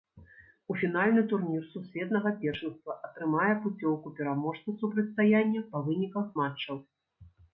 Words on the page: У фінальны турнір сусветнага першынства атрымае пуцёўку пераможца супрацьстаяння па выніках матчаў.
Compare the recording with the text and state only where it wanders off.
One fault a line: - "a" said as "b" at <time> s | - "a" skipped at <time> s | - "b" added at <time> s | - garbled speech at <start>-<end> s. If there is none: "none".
none